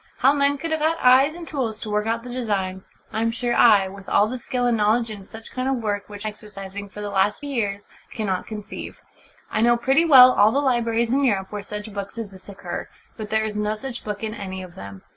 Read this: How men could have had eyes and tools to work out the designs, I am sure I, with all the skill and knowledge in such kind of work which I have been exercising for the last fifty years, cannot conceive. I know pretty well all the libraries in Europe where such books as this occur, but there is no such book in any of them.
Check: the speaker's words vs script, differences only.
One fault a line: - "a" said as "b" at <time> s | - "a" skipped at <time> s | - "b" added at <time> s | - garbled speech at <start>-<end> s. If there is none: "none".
- "I have been" skipped at 6.2 s
- "fifty" skipped at 7.4 s